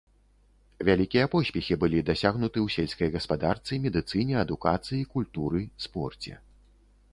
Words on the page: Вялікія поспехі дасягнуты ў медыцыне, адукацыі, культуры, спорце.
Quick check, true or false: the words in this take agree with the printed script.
false